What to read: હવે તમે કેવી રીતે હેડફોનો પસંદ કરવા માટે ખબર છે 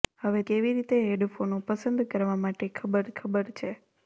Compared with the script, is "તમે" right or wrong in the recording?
wrong